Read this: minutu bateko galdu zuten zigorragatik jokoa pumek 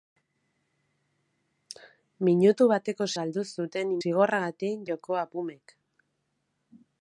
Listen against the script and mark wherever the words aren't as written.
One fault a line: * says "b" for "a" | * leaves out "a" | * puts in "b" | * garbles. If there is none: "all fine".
all fine